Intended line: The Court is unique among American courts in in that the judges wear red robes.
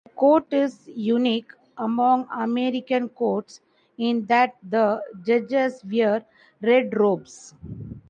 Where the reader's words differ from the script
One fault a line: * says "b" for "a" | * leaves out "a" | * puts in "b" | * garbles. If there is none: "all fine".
* leaves out "in"